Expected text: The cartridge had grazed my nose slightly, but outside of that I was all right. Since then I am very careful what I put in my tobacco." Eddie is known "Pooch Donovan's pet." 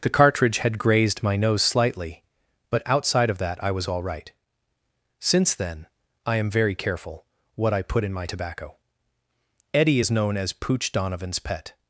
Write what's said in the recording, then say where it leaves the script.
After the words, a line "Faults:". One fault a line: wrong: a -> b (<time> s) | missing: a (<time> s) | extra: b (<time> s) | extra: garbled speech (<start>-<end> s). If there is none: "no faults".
The cartridge had grazed my nose slightly, but outside of that I was all right. Since then I am very careful what I put in my tobacco." Eddie is known as "Pooch Donovan's pet."
Faults:
extra: as (10.4 s)